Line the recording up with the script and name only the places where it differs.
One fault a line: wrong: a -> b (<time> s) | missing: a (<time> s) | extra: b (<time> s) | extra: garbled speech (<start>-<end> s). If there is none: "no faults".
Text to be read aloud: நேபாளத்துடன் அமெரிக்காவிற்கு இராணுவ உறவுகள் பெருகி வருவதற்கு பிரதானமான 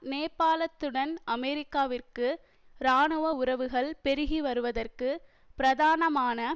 no faults